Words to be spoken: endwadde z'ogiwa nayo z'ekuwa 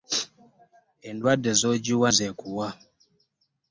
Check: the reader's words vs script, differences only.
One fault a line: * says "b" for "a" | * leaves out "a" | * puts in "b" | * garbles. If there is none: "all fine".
* leaves out "nayo"